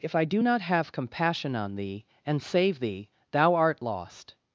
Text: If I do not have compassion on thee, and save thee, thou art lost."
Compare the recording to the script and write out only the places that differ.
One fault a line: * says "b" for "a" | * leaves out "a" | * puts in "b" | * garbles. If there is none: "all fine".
all fine